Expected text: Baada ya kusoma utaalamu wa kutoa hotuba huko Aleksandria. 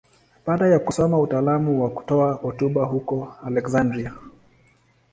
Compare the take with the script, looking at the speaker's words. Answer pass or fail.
pass